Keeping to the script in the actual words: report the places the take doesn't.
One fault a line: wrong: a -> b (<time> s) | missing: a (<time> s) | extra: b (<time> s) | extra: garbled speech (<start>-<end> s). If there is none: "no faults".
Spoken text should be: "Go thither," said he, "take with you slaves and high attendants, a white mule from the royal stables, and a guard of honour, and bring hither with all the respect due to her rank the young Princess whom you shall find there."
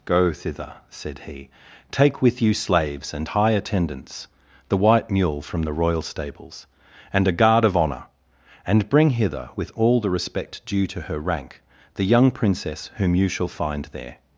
wrong: a -> the (4.7 s)